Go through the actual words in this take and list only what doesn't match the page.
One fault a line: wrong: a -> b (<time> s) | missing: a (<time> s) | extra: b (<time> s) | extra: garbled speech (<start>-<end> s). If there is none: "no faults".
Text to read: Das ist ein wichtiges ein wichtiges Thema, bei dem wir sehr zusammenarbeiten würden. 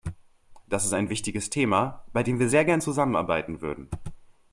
missing: ein wichtiges (1.5 s)
extra: gern (2.6 s)